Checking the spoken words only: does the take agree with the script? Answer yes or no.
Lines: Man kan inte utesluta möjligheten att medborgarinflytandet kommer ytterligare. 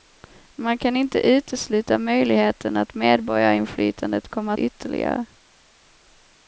yes